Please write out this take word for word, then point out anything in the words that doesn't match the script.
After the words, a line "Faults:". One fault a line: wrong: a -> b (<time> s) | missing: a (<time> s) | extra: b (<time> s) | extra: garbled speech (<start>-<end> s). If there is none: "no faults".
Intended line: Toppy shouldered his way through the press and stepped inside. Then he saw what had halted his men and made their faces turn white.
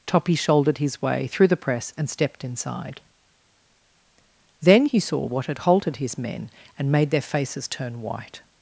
Toppy shouldered his way through the press and stepped inside. Then he saw what had halted his men and made their faces turn white.
Faults:
no faults